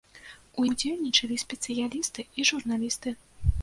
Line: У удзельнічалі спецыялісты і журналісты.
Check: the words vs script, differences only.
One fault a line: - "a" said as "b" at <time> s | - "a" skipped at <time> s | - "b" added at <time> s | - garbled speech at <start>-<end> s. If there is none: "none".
none